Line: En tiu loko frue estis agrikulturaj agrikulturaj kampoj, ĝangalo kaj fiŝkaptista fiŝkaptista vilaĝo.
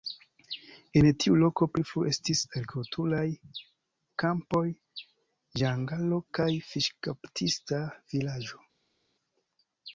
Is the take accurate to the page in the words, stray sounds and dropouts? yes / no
no